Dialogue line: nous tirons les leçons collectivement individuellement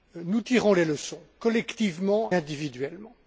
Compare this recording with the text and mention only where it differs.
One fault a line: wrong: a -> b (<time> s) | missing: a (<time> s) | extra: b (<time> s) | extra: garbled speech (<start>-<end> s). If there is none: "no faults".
no faults